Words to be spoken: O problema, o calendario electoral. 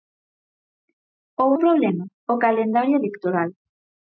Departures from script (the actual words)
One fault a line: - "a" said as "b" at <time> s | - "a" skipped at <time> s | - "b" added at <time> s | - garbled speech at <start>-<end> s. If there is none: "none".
none